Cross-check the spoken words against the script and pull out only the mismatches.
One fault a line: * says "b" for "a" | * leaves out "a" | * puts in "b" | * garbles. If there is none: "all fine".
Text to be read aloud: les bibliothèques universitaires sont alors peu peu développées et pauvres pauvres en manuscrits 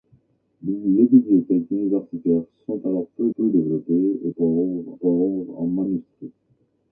all fine